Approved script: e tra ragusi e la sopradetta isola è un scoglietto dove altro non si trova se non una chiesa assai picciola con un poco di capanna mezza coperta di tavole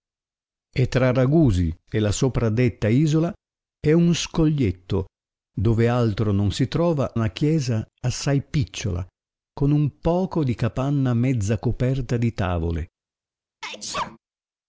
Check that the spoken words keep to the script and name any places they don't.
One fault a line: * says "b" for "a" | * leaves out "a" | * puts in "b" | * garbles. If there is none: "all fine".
* leaves out "se non"